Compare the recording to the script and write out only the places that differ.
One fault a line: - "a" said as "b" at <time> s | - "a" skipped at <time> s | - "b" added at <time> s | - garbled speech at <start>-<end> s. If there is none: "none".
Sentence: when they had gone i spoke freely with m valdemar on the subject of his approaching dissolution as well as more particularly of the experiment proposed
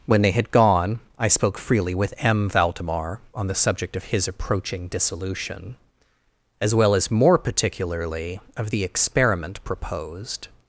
none